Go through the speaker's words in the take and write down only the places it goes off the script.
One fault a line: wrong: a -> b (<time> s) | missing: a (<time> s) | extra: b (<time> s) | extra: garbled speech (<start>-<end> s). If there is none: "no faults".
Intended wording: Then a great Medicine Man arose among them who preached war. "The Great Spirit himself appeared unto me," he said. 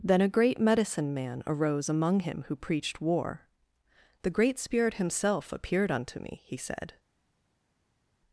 wrong: them -> him (2.2 s)